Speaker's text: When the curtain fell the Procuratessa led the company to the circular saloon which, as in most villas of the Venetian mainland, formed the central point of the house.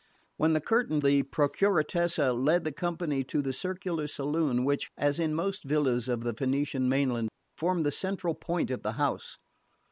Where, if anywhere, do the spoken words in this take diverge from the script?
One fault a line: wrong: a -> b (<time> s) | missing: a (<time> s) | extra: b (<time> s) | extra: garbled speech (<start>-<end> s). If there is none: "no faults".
missing: fell (1.0 s)